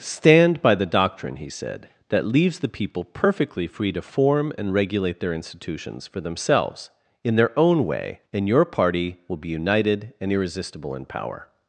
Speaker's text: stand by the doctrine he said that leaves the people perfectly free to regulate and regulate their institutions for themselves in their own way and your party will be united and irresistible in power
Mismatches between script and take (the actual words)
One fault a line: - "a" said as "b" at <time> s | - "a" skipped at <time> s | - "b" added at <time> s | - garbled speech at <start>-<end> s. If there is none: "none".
- "regulate" said as "form" at 4.0 s